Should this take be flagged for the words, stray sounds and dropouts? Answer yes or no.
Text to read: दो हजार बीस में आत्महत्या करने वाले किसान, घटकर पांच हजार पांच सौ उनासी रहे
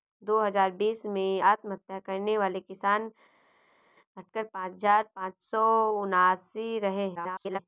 yes